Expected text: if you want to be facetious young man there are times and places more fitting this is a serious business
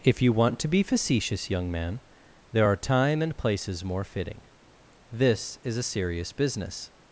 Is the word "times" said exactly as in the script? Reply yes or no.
no